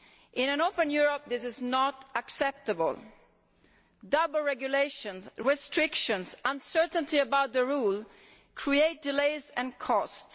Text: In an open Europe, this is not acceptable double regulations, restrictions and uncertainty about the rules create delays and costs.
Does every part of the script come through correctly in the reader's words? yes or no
yes